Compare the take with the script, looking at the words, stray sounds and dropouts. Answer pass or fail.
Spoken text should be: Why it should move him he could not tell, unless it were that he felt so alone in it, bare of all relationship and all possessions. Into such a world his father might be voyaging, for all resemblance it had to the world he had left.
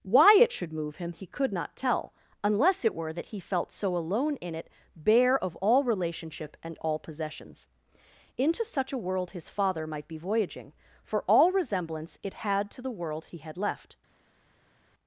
pass